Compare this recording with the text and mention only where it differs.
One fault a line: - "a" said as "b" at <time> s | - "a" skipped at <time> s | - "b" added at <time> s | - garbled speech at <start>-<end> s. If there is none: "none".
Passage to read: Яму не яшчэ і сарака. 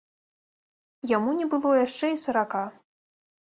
- "было" added at 1.5 s